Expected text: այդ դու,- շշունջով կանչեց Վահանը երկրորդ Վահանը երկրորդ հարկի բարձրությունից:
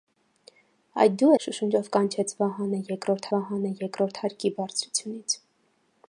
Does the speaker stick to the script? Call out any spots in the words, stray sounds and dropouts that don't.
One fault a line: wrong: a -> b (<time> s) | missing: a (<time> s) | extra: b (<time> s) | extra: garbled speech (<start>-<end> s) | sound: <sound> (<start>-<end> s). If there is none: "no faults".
no faults